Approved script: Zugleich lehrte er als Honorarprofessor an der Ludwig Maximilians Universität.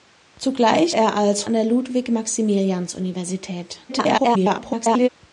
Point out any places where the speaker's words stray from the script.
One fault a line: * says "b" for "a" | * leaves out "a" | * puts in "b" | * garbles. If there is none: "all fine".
* leaves out "lehrte"
* leaves out "Honorarprofessor"
* garbles